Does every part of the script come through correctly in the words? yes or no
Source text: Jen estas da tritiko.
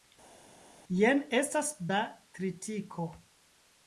yes